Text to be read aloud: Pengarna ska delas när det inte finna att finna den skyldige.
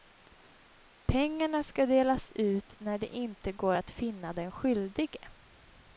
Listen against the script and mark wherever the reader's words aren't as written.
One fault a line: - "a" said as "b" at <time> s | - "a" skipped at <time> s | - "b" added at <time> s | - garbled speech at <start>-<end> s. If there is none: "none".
- "ut" added at 2.4 s
- "finna" said as "går" at 3.5 s